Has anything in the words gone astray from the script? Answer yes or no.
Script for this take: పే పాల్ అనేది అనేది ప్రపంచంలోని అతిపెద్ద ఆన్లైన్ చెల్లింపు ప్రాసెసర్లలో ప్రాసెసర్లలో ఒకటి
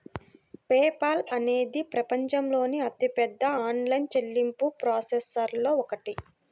yes